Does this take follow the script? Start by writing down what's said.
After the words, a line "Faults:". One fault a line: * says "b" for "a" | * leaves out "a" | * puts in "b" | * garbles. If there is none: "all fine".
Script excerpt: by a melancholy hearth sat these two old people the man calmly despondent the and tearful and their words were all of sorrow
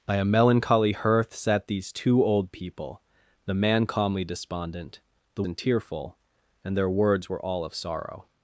by a melancholy hearth sat these two old people the man calmly despondent the and tearful and their words were all of sorrow
Faults:
all fine